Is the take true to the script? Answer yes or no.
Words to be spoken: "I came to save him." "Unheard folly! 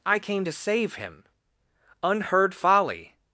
yes